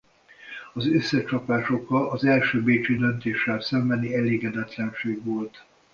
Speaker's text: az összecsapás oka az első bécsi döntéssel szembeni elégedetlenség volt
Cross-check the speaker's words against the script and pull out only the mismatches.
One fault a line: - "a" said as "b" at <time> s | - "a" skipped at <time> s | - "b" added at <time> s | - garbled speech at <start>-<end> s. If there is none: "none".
none